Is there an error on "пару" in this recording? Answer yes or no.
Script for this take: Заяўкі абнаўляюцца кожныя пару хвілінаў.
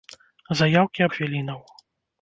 yes